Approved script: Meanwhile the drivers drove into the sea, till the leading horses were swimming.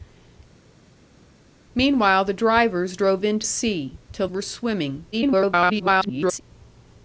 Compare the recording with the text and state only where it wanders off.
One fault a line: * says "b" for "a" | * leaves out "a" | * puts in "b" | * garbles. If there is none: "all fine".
* leaves out "the"
* leaves out "the leading horses"
* garbles